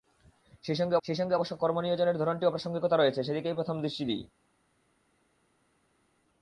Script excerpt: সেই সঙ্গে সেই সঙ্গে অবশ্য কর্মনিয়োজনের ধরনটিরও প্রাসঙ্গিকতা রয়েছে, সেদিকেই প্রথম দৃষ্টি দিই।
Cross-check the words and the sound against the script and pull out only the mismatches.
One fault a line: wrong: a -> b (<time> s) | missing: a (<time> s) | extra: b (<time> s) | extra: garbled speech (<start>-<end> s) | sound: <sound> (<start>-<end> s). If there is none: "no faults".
no faults